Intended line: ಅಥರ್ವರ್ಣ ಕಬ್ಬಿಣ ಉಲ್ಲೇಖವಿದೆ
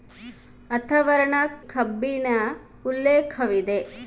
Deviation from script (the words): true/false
false